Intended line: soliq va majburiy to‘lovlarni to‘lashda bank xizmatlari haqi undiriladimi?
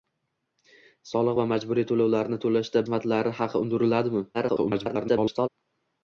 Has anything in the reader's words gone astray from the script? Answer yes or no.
yes